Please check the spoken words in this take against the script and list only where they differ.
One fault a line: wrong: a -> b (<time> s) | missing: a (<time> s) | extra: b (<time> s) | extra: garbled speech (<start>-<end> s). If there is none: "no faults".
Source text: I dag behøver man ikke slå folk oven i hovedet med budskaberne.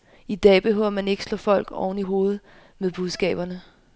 no faults